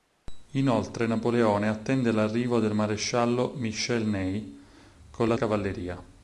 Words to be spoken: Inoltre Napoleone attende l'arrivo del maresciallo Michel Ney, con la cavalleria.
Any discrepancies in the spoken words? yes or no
no